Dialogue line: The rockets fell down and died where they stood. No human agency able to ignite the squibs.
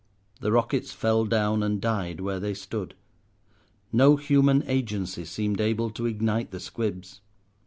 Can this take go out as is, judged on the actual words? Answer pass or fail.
fail